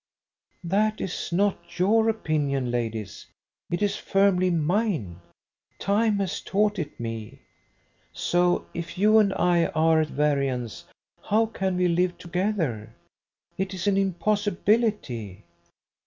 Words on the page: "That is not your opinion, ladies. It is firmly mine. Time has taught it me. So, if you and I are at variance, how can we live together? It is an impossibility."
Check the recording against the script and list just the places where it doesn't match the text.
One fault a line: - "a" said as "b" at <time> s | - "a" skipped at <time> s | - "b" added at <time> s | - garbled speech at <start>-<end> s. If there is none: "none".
none